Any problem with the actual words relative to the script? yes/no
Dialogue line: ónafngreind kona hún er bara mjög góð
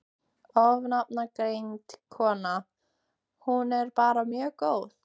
no